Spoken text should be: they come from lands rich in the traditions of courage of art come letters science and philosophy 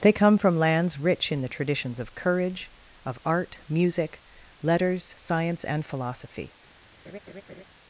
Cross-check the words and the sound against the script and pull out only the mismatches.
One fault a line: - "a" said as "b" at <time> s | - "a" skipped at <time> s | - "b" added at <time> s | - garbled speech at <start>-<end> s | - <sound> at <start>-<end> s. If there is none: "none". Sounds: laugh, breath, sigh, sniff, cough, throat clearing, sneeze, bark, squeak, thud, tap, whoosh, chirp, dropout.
- "come" said as "music" at 3.7 s
- laugh at 7.0-7.6 s